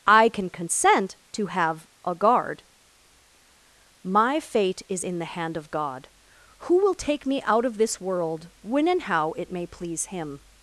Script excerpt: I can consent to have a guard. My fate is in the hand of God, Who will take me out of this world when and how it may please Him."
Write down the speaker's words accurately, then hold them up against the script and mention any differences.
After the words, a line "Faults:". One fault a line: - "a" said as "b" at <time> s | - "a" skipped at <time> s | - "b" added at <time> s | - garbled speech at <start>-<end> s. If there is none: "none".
I can consent to have a guard. My fate is in the hand of God, Who will take me out of this world when and how it may please Him."
Faults:
none